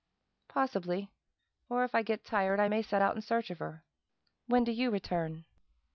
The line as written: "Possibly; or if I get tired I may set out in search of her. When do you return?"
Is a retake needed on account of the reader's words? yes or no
no